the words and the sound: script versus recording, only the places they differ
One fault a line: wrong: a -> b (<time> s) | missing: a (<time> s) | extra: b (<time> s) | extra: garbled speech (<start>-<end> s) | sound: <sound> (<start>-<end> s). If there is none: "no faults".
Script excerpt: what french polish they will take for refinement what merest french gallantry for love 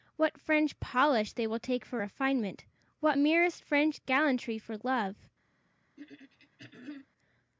sound: throat clearing (6.0-7.1 s)